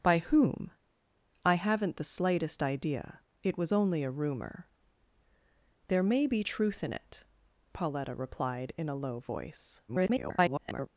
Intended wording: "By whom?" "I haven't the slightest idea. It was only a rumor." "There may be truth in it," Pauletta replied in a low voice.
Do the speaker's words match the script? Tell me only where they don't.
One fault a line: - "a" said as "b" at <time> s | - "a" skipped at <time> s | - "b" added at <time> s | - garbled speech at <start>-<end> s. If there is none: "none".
- garbled speech at 9.9-10.9 s